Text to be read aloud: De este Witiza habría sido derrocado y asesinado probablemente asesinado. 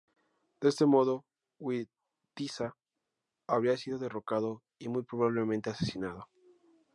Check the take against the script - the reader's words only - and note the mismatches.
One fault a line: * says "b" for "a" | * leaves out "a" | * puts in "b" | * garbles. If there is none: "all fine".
* puts in "modo"
* says "muy" for "asesinado"